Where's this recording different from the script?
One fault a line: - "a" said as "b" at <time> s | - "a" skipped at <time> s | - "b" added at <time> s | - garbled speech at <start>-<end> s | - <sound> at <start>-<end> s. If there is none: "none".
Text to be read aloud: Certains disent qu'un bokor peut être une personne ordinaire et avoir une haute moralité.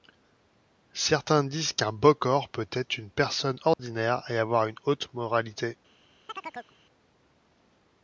- dropout at 3.7-3.8 s
- chirp at 6.3-6.8 s